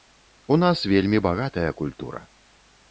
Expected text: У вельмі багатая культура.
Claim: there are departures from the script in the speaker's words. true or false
true